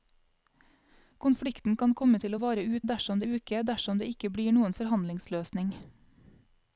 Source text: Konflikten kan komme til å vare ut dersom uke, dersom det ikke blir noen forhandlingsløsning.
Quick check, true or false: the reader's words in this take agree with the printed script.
true